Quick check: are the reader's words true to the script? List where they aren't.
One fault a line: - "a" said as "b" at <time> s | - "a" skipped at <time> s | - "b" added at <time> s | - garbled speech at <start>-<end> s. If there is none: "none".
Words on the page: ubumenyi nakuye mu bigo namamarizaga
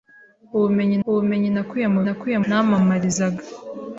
- "ubumenyi" added at 1.1 s
- "bigo" said as "nakuye" at 2.1 s